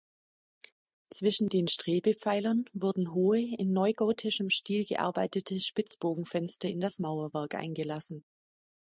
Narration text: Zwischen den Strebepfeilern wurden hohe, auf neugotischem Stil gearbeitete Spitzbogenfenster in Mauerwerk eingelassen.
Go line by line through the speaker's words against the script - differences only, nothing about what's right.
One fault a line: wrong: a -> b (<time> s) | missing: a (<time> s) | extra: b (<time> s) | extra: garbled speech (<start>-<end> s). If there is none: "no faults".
wrong: auf -> in (3.4 s)
extra: das (6.8 s)